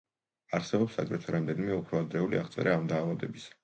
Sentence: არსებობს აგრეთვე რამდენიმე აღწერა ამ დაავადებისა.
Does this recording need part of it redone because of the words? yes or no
yes